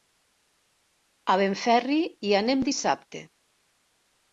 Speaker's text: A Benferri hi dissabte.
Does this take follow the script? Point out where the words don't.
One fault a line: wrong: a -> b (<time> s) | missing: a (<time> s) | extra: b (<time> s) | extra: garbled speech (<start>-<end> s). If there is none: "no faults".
extra: anem (2.4 s)